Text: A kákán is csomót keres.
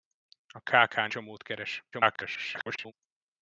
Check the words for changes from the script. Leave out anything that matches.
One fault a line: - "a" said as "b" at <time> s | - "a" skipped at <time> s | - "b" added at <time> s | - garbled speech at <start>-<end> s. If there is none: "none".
- "is" skipped at 1.1 s
- garbled speech at 1.9-2.9 s